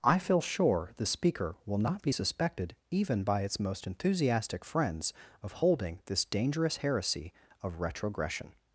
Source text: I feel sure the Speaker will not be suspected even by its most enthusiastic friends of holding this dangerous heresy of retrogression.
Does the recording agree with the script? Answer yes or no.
yes